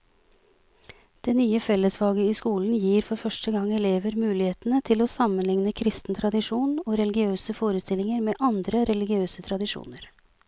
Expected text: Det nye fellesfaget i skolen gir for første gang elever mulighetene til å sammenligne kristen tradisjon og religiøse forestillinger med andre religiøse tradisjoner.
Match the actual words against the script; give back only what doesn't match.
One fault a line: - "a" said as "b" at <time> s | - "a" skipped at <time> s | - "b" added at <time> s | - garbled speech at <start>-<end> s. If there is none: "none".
none